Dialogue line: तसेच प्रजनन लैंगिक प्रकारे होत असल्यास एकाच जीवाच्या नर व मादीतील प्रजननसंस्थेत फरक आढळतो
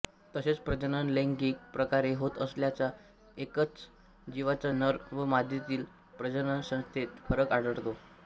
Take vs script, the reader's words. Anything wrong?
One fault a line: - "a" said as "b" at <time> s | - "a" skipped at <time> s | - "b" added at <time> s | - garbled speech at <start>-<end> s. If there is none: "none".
none